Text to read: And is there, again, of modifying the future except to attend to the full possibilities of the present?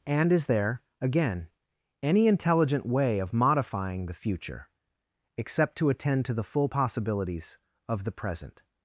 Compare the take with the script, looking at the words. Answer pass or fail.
fail